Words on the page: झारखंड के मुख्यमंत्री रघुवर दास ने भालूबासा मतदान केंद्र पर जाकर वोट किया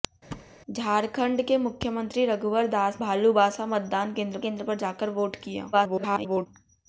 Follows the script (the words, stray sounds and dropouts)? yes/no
no